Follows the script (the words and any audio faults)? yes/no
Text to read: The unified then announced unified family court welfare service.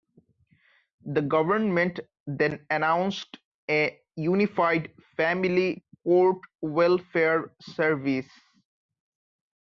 no